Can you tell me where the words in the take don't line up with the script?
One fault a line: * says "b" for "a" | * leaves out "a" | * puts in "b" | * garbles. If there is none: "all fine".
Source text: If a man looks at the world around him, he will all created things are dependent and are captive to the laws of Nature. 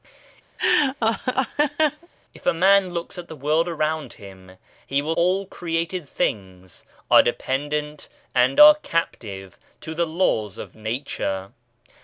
all fine